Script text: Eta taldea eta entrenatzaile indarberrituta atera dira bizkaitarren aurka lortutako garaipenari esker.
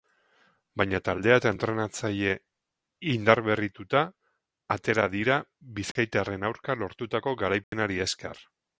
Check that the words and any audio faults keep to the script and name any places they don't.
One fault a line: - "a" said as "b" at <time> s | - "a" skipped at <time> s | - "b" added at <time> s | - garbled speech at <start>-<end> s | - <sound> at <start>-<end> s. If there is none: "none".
- "Eta" said as "Baina" at 0.8 s
- dropout at 5.9-6.0 s
- dropout at 7.6-7.7 s